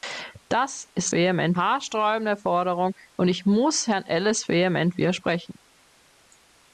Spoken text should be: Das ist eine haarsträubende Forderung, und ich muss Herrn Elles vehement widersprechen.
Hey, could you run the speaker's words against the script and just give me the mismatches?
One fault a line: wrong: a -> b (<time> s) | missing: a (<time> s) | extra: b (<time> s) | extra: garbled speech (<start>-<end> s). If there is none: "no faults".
wrong: eine -> vehement (1.1 s)